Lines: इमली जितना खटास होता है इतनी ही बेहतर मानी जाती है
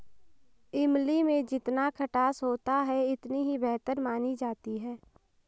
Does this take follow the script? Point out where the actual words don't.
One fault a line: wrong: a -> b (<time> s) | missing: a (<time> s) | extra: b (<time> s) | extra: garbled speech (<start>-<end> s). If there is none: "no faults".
extra: में (1.2 s)